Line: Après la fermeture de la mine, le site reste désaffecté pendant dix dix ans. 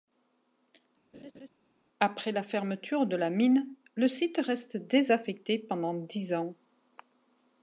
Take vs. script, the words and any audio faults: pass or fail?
fail